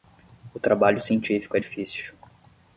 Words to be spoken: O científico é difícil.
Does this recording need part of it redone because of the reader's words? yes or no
yes